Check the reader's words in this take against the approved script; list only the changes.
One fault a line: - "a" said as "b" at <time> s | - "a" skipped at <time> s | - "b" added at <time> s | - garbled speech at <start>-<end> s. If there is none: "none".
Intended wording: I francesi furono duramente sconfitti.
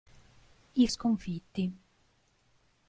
- "francesi furono duramente" skipped at 0.9 s